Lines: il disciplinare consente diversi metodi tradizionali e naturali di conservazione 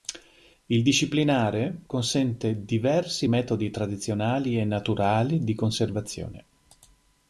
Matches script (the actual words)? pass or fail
pass